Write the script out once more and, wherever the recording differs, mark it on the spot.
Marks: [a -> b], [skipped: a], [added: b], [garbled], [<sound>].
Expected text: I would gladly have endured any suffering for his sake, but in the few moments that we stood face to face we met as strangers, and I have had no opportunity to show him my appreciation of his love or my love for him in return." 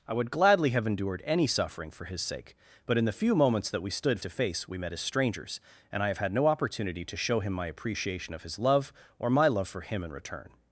I would gladly have endured any suffering for his sake, but in the few moments that we stood [skipped: face] to face we met as strangers, and I have had no opportunity to show him my appreciation of his love or my love for him in return."